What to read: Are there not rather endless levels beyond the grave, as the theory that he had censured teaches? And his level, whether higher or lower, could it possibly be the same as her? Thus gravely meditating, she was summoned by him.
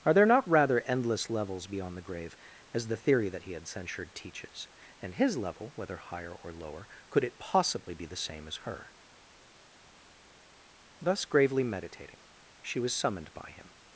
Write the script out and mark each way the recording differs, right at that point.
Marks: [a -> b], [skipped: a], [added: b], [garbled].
Are there not rather endless levels beyond the grave, as the theory that he had censured teaches? And his level, whether higher or lower, could it possibly be the same as her? Thus gravely meditating, she was summoned by him.